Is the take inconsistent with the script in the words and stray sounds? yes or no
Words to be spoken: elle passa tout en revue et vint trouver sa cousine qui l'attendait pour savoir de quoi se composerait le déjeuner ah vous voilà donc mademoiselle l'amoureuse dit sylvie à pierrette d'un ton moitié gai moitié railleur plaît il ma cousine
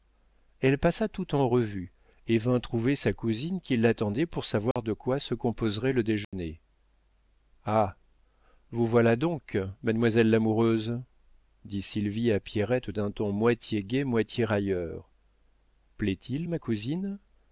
yes